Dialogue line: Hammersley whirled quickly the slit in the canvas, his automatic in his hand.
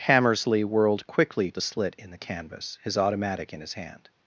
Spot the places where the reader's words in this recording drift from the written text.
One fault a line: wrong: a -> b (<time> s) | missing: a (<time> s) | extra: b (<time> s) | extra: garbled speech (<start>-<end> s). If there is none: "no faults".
no faults